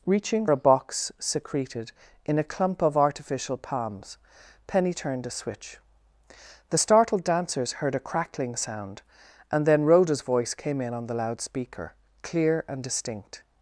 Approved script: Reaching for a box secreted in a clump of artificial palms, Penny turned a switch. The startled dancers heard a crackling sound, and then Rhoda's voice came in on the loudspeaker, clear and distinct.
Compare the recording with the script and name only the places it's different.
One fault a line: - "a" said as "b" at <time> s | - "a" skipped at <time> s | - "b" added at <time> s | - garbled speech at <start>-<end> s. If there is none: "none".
- "for" skipped at 0.5 s